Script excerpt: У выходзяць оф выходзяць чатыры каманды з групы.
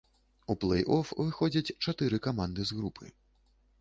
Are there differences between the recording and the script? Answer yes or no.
yes